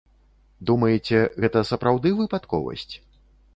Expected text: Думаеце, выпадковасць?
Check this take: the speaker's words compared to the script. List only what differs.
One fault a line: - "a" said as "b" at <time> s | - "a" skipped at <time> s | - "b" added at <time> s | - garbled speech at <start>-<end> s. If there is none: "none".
- "гэта сапраўды" added at 1.4 s